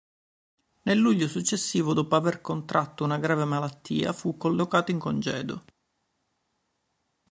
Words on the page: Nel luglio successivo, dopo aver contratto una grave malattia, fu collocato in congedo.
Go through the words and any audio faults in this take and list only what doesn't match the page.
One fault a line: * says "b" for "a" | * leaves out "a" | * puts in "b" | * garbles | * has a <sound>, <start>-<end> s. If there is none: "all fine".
all fine